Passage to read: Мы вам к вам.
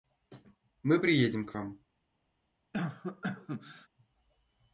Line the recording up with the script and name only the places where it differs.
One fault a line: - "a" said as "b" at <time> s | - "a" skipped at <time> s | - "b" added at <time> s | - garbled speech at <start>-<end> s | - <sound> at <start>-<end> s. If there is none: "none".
- "вам" said as "приедем" at 1.0 s
- cough at 2.7-3.9 s